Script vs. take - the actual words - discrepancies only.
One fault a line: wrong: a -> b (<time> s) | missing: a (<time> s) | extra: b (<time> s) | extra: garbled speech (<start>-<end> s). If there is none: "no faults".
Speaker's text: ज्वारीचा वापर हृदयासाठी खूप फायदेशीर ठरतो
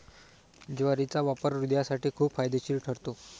no faults